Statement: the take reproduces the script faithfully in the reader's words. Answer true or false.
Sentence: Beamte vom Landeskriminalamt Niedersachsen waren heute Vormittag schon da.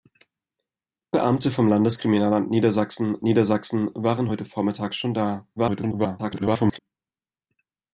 false